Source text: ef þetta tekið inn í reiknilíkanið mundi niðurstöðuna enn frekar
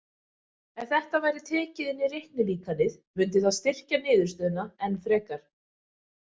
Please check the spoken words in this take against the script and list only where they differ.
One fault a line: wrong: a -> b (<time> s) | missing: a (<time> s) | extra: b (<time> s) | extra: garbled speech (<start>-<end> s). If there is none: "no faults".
extra: væri (1.2 s)
extra: það styrkja (3.5 s)